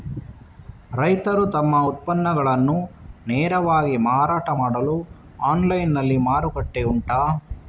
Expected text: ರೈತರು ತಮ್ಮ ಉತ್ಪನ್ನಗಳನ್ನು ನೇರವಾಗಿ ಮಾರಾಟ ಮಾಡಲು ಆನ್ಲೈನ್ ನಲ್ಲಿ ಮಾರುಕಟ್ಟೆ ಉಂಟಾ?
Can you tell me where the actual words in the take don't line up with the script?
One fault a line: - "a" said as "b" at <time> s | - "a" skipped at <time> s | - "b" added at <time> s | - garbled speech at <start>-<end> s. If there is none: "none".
none